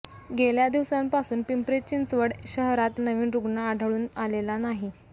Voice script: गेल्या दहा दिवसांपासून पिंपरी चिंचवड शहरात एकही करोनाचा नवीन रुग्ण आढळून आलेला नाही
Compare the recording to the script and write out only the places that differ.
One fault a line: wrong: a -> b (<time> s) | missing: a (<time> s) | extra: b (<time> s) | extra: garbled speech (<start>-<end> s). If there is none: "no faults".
missing: दहा (0.7 s)
missing: एकही करोनाचा (3.0 s)